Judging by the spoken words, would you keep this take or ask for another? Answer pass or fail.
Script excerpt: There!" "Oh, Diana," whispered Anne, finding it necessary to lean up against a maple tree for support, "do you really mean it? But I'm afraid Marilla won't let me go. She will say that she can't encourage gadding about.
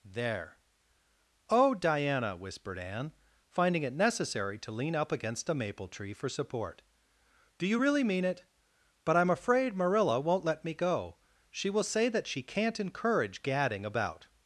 pass